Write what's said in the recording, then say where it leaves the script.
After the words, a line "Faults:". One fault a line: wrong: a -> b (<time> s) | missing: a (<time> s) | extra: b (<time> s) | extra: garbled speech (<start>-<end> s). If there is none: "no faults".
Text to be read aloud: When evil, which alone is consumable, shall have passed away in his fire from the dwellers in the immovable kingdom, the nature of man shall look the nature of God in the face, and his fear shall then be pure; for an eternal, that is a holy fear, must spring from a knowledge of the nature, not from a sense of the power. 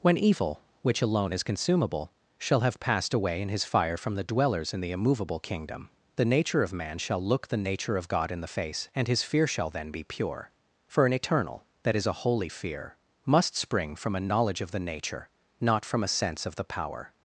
When evil, which alone is consumable, shall have passed away in his fire from the dwellers in the immovable kingdom, the nature of man shall look the nature of God in the face, and his fear shall then be pure; for an eternal, that is a holy fear, must spring from a knowledge of the nature, not from a sense of the power.
Faults:
no faults